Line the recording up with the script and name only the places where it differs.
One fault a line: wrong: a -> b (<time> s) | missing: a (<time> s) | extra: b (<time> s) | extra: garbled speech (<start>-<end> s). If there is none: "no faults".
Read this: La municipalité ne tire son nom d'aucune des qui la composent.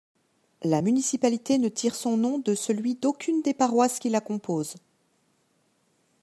extra: de celui (2.4 s)
extra: paroisses (3.5 s)